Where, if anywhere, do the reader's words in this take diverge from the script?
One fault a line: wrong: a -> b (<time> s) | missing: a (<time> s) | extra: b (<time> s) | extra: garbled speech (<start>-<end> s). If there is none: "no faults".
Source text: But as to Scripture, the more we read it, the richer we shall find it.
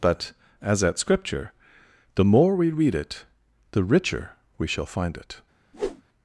wrong: to -> at (0.8 s)